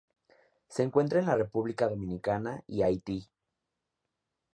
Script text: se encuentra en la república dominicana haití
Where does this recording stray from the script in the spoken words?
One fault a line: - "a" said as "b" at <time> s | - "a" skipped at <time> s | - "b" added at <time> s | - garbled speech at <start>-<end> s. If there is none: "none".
- "y" added at 2.7 s